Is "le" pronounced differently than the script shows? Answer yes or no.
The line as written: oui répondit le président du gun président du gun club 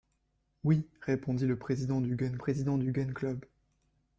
no